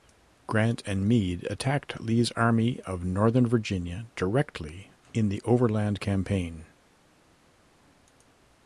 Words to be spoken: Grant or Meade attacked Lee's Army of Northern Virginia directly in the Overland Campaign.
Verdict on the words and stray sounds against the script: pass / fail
fail